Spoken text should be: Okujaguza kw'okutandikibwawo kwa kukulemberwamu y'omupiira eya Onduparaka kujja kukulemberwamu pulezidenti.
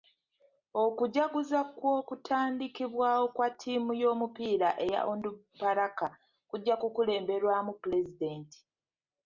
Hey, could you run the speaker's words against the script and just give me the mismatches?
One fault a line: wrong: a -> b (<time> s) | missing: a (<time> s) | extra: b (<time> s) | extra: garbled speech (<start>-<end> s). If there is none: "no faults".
wrong: kukulemberwamu -> ttiimu (3.5 s)